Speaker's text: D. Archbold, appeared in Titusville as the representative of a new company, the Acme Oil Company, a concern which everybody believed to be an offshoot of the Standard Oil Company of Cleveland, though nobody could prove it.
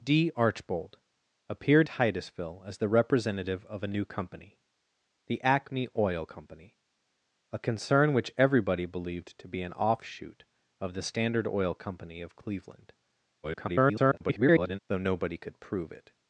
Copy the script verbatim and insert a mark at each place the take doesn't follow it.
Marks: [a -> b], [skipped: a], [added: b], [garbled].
D. Archbold, appeared [skipped: in] Titusville as the representative of a new company, the Acme Oil Company, a concern which everybody believed to be an offshoot of the Standard Oil Company of Cleveland, [garbled] though nobody could prove it.